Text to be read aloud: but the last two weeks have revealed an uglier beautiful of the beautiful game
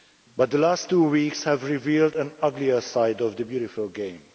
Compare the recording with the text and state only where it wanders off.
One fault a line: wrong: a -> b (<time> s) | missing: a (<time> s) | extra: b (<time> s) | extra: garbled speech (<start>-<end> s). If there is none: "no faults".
wrong: beautiful -> side (2.8 s)